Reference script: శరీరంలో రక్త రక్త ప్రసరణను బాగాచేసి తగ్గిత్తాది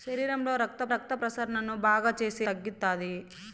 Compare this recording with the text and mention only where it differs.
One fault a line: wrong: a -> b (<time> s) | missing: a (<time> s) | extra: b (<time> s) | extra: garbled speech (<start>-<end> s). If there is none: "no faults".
no faults